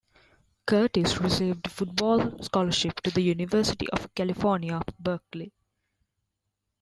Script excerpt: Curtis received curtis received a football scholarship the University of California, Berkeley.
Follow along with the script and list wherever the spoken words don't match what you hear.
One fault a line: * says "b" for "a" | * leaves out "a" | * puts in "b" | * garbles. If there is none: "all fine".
* leaves out "curtis received"
* puts in "to"